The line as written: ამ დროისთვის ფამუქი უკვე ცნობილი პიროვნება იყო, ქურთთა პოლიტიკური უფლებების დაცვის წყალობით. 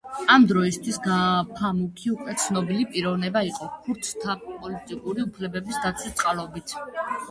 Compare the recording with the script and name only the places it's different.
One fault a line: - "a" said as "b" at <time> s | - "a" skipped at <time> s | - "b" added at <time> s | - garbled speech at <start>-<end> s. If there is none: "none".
none